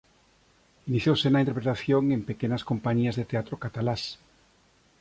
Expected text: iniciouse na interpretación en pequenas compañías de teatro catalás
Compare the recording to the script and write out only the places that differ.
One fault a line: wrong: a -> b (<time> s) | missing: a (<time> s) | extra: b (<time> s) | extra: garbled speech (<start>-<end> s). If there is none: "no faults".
no faults